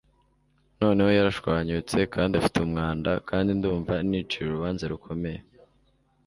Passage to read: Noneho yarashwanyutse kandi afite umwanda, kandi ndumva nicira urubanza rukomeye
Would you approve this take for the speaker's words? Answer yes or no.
yes